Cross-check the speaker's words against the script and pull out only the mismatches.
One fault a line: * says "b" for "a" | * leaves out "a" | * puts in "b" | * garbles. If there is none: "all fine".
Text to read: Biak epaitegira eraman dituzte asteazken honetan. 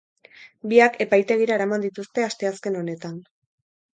all fine